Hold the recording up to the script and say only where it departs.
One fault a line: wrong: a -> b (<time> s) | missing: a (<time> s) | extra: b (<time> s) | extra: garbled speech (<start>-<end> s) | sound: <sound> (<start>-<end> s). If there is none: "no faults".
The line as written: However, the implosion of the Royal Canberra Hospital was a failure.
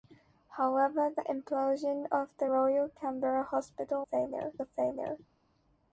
wrong: was -> failure (4.0 s)